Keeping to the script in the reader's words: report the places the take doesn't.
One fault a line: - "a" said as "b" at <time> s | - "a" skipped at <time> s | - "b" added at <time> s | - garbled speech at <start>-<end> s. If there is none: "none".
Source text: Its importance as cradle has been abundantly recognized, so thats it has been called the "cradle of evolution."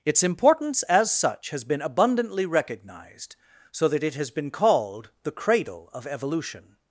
- "cradle" said as "such" at 1.1 s
- "thats" said as "that" at 3.9 s